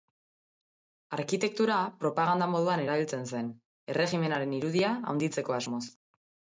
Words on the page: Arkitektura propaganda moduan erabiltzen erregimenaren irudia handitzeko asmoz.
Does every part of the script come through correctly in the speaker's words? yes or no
no